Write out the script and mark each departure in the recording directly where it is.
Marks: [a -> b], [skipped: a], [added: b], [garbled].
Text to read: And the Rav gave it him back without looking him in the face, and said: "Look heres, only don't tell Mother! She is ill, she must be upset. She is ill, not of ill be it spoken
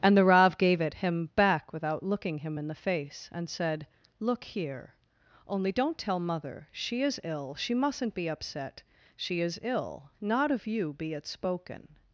And the Rav gave it him back without looking him in the face, and said: "Look [heres, -> here] only don't tell Mother! She is ill, she [must -> mustn't] be upset. She is ill, not of [ill -> you] be it spoken